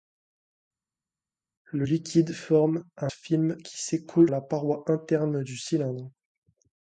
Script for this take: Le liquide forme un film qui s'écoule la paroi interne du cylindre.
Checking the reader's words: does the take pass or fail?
pass